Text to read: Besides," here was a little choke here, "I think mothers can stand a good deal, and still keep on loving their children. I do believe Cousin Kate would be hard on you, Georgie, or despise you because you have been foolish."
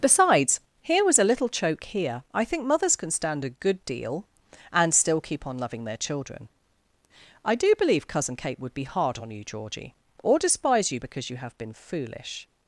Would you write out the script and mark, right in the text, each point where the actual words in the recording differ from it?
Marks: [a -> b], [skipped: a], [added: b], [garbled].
Besides," here was a little choke here, "I think mothers can stand a good deal, and still keep on loving their children. I do believe Cousin Kate would be hard on you, Georgie, or despise you because you have been foolish."